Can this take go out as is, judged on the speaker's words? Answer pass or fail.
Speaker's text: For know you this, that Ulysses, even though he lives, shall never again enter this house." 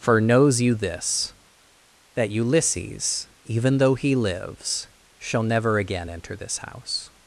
fail